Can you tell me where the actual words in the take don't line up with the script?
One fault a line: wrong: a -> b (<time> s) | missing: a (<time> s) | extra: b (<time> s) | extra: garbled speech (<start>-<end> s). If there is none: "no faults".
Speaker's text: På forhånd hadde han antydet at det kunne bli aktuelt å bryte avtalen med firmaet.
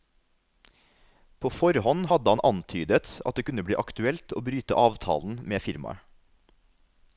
no faults